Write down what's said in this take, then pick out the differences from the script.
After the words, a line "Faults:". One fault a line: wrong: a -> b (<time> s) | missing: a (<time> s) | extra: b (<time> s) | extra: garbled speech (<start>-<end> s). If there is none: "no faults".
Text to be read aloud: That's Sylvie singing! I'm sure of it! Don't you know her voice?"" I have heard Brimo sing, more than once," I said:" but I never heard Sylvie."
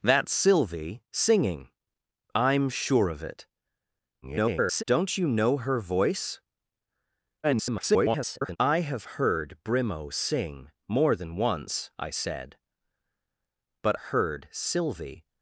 That's Sylvie singing! I'm sure of it! [garbled] Don't you know her voice?"" [garbled] I have heard Brimo sing, more than once," I said:" but heard Sylvie."
Faults:
extra: garbled speech (4.2-4.8 s)
extra: garbled speech (7.4-8.6 s)
missing: I never (14.0 s)